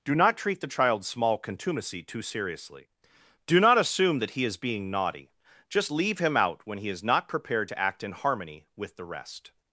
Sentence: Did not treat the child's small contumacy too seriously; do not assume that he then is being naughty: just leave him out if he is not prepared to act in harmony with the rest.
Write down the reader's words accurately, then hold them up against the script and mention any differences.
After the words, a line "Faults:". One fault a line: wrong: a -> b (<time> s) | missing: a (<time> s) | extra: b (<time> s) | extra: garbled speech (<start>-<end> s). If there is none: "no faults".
Do not treat the child's small contumacy too seriously; do not assume that he is being naughty: just leave him out when he is not prepared to act in harmony with the rest.
Faults:
wrong: Did -> Do (0.0 s)
missing: then (4.5 s)
wrong: if -> when (6.7 s)